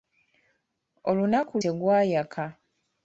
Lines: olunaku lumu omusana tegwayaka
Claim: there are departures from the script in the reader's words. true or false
true